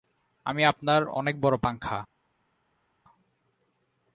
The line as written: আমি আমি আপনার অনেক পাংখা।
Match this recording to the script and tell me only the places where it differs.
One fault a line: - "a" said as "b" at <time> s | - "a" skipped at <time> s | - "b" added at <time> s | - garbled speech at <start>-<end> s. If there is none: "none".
- "আমি" skipped at 0.6 s
- "বড়" added at 1.4 s